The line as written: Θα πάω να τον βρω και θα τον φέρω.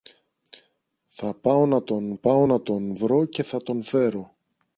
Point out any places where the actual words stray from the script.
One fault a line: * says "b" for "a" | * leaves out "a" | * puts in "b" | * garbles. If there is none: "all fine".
* puts in "πάω να τον"